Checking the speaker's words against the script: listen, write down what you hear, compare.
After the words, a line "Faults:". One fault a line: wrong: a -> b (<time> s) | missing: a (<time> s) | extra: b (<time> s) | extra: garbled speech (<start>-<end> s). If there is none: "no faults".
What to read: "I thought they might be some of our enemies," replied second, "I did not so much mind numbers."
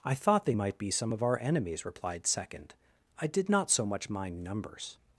"I thought they might be some of our enemies," replied second, "I did not so much mind numbers."
Faults:
no faults